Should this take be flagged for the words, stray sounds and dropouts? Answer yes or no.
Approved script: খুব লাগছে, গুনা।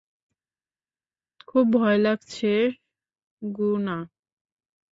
yes